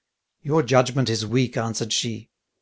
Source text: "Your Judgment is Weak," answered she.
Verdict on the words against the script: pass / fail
pass